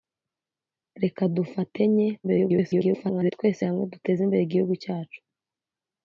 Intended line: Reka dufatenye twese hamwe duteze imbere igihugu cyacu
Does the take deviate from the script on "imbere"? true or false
false